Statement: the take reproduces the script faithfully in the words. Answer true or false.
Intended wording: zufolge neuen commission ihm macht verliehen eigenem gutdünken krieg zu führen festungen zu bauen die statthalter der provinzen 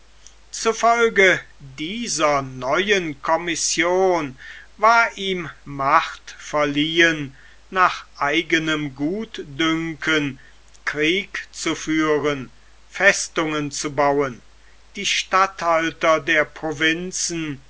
false